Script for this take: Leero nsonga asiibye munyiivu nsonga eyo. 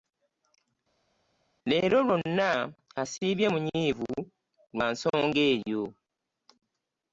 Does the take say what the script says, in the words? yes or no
no